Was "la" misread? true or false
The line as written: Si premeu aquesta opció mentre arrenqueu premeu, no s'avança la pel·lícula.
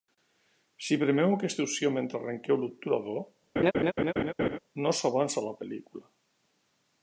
false